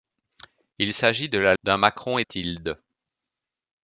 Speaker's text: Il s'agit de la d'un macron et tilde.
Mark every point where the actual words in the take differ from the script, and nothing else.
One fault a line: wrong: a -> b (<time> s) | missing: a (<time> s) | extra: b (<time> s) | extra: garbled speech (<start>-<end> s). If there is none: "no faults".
no faults